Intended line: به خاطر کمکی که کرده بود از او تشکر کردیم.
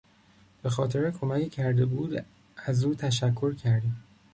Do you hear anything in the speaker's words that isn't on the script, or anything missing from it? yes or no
no